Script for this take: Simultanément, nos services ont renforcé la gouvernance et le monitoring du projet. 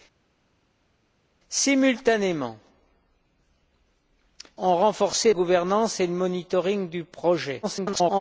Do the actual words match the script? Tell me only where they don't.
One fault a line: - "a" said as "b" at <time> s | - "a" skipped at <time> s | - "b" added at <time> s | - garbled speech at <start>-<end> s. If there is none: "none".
- "nos services" skipped at 2.6 s
- "la" skipped at 5.3 s
- garbled speech at 7.6-8.2 s